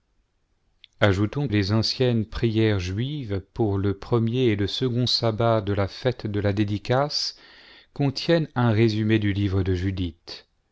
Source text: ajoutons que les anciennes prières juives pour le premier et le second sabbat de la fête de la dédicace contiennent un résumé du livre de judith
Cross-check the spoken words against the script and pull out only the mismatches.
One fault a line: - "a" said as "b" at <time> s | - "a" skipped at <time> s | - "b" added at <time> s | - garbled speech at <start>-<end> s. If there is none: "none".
- "que" skipped at 1.5 s